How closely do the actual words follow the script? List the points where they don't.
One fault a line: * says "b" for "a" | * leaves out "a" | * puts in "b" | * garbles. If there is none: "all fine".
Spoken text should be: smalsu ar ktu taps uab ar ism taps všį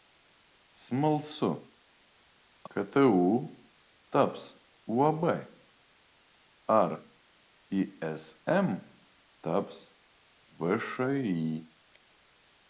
* leaves out "ar"